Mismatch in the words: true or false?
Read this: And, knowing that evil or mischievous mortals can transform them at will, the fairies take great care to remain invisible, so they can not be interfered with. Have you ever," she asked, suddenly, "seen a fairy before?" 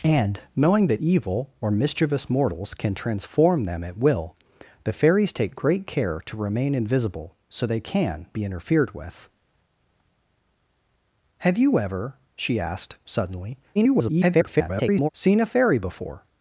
true